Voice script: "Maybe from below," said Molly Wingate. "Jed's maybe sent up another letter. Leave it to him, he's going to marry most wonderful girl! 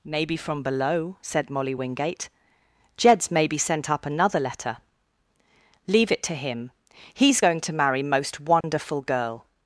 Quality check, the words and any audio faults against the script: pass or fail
fail